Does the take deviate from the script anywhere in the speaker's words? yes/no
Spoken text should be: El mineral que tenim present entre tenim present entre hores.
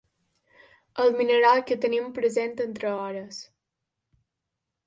yes